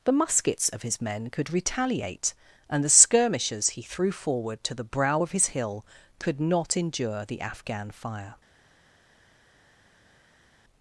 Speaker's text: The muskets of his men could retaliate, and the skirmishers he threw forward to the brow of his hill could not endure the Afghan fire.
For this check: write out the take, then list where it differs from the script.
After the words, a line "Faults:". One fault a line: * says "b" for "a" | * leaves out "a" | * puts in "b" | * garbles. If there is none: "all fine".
The muskets of his men could retaliate, and the skirmishers he threw forward to the brow of his hill could not endure the Afghan fire.
Faults:
all fine